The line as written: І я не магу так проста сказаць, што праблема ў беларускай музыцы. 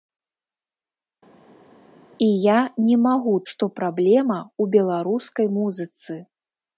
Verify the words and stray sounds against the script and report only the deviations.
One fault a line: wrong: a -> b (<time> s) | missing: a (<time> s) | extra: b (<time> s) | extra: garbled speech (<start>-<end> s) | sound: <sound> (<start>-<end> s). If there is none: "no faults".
missing: так проста сказаць (3.3 s)